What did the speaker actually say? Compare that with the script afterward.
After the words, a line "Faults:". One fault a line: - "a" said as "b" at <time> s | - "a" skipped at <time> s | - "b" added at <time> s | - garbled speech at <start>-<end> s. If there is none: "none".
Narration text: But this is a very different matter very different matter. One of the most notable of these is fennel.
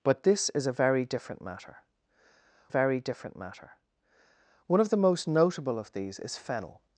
But this is a very different matter very different matter. One of the most notable of these is fennel.
Faults:
none